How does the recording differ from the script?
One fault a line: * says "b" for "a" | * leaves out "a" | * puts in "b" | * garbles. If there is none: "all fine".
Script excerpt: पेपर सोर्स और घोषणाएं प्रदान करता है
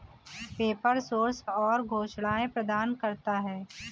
all fine